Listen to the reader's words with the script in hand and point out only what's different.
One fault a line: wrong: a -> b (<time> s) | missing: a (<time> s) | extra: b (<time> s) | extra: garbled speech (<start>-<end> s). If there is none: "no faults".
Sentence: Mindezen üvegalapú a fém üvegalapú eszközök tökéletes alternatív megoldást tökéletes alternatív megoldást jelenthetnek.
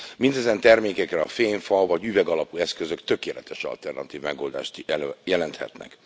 wrong: üvegalapú -> termékekre (0.6 s)
extra: fa vagy (1.6 s)
missing: tökéletes alternatív megoldást (4.9 s)